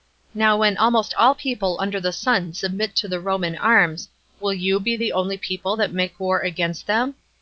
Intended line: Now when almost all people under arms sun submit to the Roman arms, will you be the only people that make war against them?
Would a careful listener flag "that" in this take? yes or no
no